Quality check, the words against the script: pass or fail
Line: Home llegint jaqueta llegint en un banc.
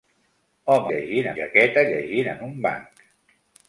pass